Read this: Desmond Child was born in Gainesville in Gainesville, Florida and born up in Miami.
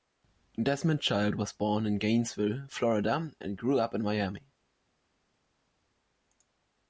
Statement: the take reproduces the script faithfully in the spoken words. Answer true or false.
false